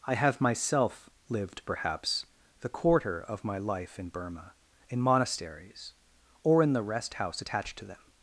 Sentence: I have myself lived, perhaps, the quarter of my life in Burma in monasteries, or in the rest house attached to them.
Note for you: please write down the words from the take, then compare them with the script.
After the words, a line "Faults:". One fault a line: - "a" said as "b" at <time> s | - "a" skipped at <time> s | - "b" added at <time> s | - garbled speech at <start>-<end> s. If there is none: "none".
I have myself lived, perhaps, the quarter of my life in Burma in monasteries, or in the rest house attached to them.
Faults:
none